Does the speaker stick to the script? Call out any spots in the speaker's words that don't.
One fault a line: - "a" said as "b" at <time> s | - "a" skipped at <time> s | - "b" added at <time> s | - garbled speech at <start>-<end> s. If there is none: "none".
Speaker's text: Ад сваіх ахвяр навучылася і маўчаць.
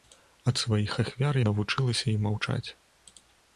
none